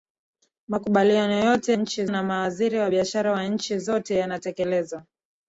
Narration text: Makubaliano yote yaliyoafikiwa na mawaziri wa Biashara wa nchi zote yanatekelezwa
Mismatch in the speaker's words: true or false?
true